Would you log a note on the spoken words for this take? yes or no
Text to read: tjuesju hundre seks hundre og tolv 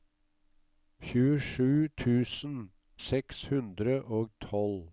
yes